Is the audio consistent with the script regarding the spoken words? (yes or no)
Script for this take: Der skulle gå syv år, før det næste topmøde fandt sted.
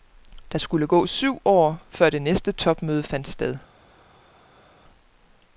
yes